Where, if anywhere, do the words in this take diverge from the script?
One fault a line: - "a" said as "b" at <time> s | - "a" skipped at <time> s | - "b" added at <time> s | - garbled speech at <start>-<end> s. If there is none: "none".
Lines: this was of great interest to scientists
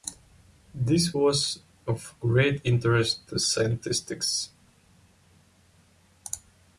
none